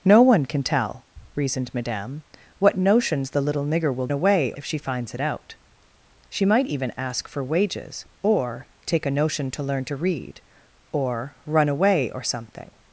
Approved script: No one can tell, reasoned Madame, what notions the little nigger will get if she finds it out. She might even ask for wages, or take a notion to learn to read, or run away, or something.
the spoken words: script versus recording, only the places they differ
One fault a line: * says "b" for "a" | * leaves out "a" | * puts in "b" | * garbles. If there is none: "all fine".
* says "away" for "get"